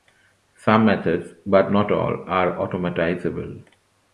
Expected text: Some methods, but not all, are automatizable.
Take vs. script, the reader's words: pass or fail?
pass